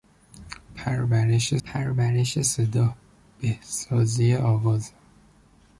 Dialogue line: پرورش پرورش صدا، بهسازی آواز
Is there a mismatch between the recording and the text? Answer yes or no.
no